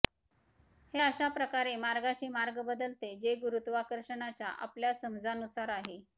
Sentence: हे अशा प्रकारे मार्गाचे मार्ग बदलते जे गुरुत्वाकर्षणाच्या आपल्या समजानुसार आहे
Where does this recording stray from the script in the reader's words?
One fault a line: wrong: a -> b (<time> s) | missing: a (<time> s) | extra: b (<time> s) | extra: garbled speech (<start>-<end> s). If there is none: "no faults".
no faults